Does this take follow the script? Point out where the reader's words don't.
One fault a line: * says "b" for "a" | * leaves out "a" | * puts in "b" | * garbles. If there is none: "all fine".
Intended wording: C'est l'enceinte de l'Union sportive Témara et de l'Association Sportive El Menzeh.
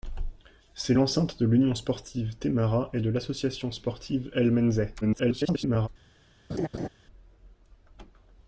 * garbles